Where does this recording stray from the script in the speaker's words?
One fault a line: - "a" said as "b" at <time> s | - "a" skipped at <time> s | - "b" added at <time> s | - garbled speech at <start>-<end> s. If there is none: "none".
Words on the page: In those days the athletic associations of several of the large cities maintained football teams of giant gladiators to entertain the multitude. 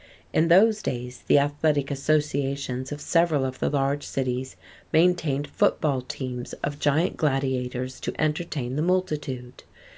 none